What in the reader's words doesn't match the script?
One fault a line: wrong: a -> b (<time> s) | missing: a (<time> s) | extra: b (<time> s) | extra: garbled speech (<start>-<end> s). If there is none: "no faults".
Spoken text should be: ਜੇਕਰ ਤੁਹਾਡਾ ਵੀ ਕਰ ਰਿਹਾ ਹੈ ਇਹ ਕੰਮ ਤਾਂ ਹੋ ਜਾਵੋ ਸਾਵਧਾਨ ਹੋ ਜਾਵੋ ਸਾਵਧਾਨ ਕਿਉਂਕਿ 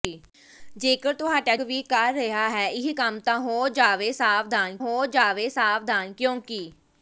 no faults